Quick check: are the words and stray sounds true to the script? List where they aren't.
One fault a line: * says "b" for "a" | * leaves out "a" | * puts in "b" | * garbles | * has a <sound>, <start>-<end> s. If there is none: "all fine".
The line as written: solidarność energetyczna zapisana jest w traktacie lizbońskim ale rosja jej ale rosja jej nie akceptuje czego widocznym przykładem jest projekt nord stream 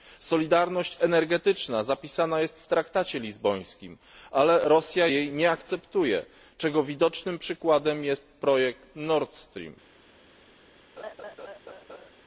* leaves out "ale rosja jej"
* has a laugh, 11.0-12.1 s